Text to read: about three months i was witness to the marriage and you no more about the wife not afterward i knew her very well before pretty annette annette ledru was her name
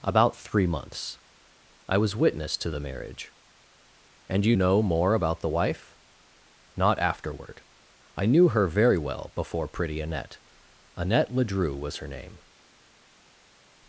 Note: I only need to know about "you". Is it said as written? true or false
true